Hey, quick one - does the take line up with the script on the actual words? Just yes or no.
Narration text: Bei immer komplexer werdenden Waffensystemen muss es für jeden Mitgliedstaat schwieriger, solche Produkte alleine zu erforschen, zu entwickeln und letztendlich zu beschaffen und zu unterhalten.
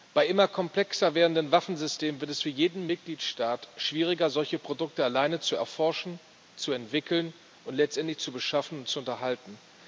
no